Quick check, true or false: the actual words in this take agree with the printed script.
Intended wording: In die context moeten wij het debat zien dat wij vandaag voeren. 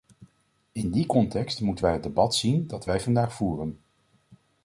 true